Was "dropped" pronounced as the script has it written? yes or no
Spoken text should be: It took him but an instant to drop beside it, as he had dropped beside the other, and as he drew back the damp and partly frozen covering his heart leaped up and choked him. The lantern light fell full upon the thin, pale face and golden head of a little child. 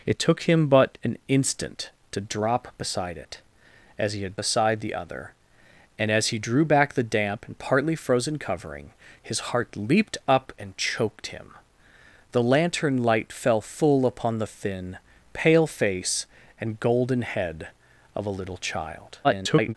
no